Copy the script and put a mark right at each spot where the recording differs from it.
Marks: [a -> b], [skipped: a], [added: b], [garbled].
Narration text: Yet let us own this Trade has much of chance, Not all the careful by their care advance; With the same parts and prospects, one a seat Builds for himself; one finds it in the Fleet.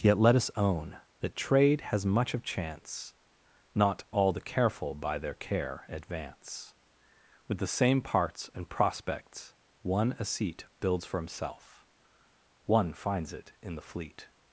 Yet let us own [this -> that] Trade has much of chance, Not all the careful by their care advance; With the same parts and prospects, one a seat Builds for himself; one finds it in the Fleet.